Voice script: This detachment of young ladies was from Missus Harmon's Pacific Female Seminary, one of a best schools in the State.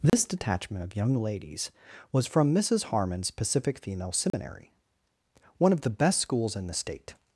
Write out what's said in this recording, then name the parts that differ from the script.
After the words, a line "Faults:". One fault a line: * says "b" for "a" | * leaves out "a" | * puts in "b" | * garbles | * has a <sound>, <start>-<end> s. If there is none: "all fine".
This detachment of young ladies was from Missus Harmon's Pacific Female Seminary, one of the best schools in the State.
Faults:
* has a dropout, 0.1-0.1 s
* has a dropout, 4.3-4.3 s
* says "the" for "a"